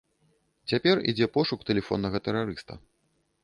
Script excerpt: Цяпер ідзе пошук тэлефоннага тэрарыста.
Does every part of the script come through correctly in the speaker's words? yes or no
yes